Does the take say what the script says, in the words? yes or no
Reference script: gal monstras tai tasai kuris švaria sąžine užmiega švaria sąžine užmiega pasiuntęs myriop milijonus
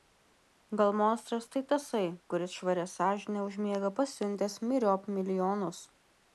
no